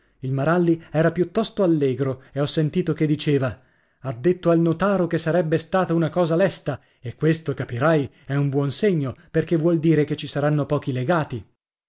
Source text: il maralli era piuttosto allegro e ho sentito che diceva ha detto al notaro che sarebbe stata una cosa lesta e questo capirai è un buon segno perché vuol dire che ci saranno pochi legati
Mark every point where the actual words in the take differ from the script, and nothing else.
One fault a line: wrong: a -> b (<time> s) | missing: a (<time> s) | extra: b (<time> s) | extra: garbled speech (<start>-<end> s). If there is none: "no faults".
no faults